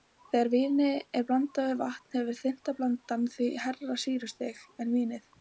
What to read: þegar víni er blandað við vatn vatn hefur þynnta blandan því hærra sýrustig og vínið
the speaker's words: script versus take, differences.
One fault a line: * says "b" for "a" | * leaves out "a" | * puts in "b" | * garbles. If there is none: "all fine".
* leaves out "vatn"
* says "en" for "og"